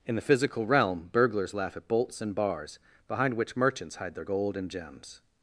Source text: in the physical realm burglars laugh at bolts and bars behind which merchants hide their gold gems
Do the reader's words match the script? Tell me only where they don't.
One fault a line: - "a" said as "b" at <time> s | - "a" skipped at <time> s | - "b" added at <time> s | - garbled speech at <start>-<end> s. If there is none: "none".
- "and" added at 4.6 s